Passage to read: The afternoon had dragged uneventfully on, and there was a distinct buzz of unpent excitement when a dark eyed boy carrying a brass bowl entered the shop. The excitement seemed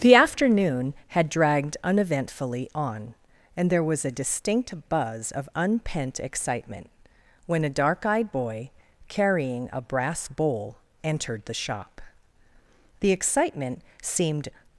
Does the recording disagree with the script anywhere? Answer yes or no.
no